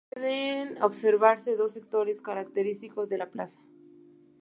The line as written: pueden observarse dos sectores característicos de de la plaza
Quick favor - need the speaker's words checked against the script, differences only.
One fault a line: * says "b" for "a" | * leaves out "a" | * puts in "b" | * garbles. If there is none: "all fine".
* leaves out "de"